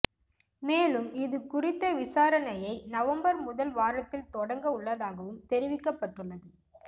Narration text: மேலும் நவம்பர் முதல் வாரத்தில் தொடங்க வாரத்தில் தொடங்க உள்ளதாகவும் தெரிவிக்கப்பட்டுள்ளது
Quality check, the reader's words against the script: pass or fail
fail